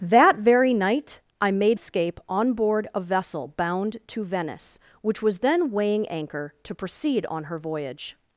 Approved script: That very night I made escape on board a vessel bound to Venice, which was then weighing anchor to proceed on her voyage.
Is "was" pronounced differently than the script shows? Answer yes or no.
no